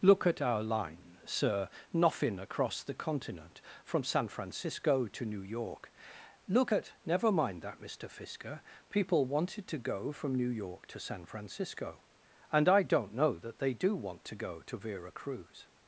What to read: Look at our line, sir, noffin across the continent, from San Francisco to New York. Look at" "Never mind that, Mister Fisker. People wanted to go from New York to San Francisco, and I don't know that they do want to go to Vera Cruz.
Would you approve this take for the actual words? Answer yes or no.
yes